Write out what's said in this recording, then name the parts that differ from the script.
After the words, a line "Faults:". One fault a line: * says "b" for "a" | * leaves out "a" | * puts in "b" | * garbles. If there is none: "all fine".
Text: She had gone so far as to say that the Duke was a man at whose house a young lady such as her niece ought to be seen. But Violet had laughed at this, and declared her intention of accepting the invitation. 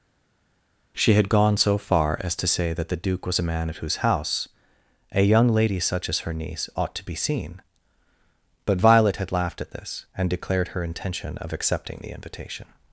She had gone so far as to say that the Duke was a man at whose house a young lady such as her niece ought to be seen. But Violet had laughed at this, and declared her intention of accepting the invitation.
Faults:
all fine